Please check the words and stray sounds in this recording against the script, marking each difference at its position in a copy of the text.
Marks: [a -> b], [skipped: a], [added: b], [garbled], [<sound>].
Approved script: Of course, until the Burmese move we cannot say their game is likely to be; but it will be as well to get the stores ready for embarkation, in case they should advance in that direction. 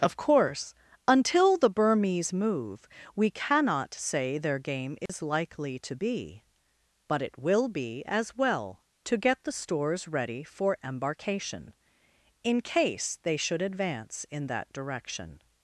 Of course, until the Burmese move we cannot say their game is [dropout] likely to be; but it will be as well to get the stores ready for embarkation, in case they should advance in that direction.